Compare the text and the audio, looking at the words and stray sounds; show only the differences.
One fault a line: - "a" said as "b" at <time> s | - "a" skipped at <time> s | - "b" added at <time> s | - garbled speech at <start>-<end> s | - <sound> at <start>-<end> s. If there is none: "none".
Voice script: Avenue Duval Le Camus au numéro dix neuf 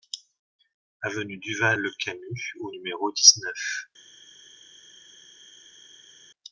none